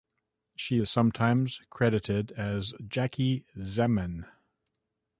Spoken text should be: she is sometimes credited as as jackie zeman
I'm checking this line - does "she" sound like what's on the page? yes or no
yes